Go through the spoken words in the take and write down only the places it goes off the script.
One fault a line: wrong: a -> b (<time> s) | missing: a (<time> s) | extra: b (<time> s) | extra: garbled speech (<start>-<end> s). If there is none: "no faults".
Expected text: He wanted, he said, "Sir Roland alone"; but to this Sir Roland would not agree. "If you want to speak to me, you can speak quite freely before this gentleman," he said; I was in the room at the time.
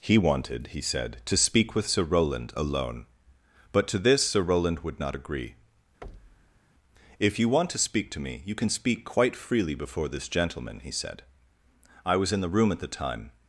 extra: to speak with (1.2 s)